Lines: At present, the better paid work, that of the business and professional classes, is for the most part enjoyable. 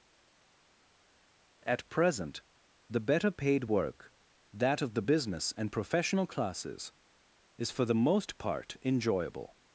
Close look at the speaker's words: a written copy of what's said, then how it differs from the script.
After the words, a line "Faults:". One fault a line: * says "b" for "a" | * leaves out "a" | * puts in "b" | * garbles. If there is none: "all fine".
At present, the better paid work, that of the business and professional classes, is for the most part enjoyable.
Faults:
all fine